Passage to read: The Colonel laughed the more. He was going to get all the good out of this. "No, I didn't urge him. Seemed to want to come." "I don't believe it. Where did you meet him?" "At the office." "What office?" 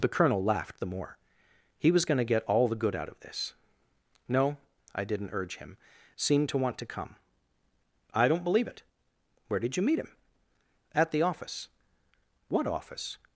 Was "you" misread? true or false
false